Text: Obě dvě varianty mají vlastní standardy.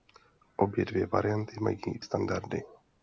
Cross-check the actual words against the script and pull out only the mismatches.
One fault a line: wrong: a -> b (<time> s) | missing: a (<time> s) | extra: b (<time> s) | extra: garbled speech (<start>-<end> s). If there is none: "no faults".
missing: vlastní (1.8 s)